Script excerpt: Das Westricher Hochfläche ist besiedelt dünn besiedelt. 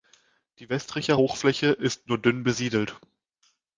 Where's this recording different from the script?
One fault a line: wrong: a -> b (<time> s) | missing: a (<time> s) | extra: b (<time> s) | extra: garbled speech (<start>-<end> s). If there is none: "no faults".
wrong: Das -> Die (0.6 s)
wrong: besiedelt -> nur (2.1 s)